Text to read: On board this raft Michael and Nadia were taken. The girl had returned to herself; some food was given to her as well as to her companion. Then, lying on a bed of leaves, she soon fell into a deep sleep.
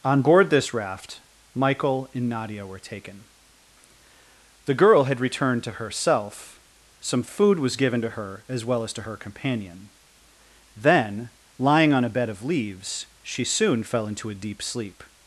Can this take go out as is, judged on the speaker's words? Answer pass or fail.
pass